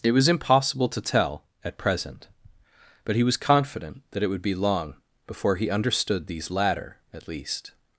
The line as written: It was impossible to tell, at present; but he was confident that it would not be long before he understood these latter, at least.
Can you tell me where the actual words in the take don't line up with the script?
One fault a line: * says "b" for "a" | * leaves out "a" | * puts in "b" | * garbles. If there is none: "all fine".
* leaves out "not"